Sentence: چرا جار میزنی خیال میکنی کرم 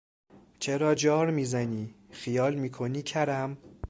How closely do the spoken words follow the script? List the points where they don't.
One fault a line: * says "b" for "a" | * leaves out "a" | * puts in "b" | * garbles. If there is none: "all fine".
all fine